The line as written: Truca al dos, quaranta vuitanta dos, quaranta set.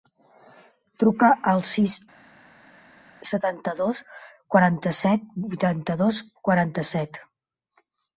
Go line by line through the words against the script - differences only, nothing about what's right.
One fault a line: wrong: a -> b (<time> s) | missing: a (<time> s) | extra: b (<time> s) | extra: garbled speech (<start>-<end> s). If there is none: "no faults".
extra: sis setanta (1.7 s)
extra: set (5.0 s)